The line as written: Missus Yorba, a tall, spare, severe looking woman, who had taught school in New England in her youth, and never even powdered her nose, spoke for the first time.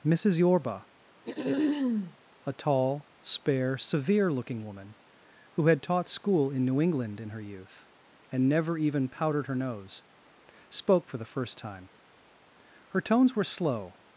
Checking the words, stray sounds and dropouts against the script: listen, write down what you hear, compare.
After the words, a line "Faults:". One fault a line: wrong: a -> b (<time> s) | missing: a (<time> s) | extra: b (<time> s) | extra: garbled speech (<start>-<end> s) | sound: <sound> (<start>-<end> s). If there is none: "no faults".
Missus Yorba, a tall, spare, severe looking woman, who had taught school in New England in her youth, and never even powdered her nose, spoke for the first time. Her tones were slow
Faults:
sound: throat clearing (1.2-2.2 s)
extra: Her tones were slow (12.9 s)